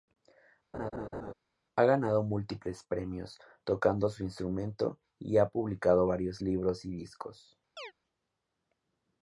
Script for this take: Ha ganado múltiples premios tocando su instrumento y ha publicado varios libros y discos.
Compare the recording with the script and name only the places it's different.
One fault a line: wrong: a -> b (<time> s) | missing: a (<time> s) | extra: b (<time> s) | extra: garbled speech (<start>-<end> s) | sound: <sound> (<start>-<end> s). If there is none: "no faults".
sound: laugh (0.7-1.3 s)
sound: chirp (7.8-7.9 s)